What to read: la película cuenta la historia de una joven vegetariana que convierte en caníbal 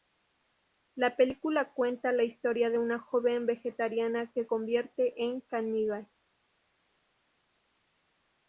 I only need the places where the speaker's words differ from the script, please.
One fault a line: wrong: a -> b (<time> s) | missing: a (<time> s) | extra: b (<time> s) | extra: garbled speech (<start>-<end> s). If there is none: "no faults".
no faults